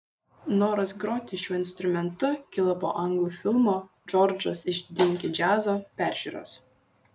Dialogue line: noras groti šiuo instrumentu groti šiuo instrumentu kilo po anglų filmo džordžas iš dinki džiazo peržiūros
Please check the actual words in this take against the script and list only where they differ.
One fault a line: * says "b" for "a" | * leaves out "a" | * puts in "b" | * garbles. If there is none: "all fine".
* leaves out "groti šiuo instrumentu"